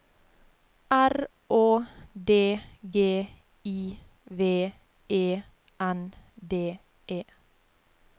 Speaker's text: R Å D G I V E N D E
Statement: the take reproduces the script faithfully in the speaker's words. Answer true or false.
true